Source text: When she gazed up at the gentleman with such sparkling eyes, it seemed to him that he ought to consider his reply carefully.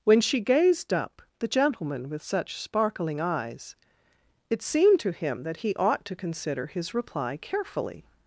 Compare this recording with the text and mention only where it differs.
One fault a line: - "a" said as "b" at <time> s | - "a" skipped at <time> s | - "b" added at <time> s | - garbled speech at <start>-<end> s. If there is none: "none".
- "at" skipped at 1.2 s